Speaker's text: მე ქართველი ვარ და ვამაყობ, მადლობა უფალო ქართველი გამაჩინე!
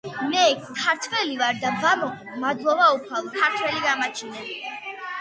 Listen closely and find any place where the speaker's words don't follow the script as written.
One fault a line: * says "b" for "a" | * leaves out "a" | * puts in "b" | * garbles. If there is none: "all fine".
all fine